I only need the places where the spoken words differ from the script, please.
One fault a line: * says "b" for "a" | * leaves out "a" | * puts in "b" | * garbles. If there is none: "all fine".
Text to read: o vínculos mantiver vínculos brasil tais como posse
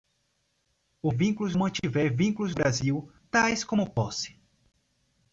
all fine